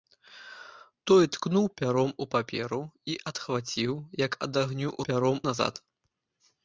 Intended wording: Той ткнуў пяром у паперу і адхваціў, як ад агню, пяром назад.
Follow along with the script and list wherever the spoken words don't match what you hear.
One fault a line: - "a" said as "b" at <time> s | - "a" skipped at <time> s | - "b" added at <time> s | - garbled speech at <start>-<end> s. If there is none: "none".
none